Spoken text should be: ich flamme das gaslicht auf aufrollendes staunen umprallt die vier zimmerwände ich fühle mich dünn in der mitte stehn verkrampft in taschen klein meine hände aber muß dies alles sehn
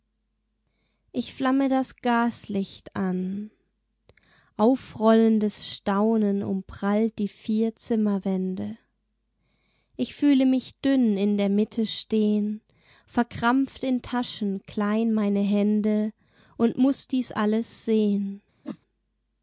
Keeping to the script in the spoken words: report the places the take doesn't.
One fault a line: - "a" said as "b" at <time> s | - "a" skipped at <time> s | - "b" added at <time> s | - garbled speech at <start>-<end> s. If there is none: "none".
- "auf" said as "an" at 3.0 s
- "aber" said as "und" at 16.6 s